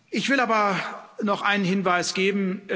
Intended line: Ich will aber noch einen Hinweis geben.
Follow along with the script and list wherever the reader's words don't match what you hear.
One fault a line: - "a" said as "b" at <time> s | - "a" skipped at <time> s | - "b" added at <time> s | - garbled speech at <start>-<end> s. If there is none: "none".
none